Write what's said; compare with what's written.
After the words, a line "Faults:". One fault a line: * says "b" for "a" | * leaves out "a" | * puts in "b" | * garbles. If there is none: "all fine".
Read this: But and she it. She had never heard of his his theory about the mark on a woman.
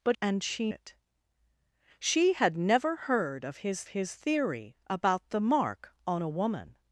But and she it. She had never heard of his his theory about the mark on a woman.
Faults:
all fine